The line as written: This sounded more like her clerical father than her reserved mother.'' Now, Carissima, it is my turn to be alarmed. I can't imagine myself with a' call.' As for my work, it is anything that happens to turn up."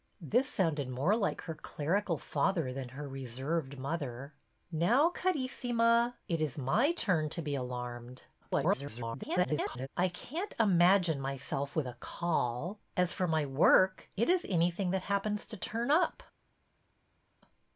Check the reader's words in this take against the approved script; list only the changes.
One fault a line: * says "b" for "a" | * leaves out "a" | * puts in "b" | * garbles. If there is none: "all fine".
* garbles